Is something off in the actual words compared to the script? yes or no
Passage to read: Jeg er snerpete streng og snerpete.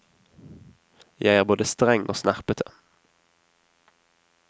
yes